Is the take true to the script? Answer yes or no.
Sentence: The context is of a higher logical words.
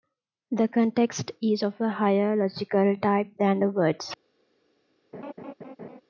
no